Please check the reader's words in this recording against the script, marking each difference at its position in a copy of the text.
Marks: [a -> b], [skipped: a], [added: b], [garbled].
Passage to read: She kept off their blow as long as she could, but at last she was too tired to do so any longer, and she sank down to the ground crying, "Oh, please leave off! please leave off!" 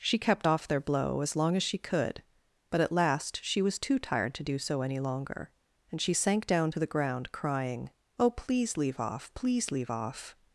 She kept off their blow as long as she could, but at last she was too tired to do so any longer, and she sank down to the ground crying, "Oh, please leave off! please leave off!"